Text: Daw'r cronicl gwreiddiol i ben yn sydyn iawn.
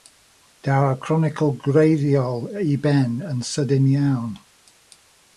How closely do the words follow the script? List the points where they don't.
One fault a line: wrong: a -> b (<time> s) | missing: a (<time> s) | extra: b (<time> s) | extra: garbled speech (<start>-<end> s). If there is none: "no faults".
no faults